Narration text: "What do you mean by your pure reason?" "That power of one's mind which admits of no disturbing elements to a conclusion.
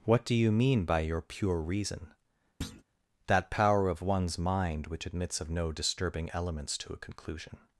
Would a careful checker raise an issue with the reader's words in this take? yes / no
no